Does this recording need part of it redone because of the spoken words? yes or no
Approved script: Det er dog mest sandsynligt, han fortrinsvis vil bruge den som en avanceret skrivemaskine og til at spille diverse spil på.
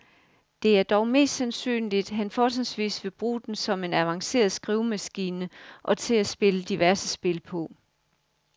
no